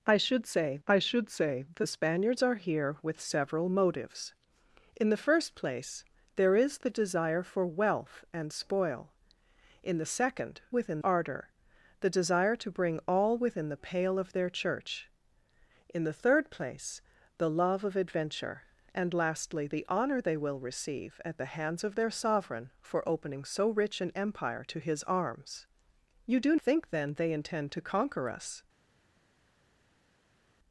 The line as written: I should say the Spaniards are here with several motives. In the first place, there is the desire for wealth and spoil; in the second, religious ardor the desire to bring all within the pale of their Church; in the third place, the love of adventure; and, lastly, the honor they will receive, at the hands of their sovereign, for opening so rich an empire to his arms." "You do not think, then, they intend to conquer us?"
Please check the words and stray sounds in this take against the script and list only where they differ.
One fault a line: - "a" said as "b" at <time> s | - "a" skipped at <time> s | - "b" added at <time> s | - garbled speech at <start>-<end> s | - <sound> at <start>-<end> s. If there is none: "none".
- "I should say" added at 0.9 s
- "religious" said as "within" at 10.7 s
- "not" skipped at 26.5 s